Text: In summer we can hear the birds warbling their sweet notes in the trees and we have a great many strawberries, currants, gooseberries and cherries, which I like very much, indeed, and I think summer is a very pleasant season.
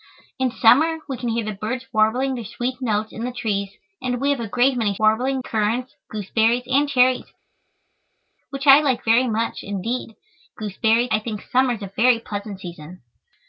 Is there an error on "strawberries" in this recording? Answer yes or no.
yes